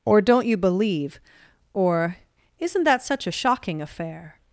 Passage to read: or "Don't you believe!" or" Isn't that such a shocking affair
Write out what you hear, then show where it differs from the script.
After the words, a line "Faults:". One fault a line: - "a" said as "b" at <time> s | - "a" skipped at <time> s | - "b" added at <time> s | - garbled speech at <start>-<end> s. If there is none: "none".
or "Don't you believe!" or" Isn't that such a shocking affair
Faults:
none